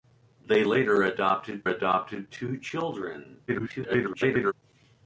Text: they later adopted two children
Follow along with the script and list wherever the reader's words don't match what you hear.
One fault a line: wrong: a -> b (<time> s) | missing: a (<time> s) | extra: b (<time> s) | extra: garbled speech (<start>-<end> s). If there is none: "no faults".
extra: adopted (1.7 s)
extra: garbled speech (3.5-4.5 s)